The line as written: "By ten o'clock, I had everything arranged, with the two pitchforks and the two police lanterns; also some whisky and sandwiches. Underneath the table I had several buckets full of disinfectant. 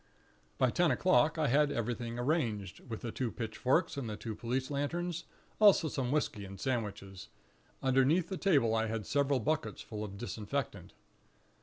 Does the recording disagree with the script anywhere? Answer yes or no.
no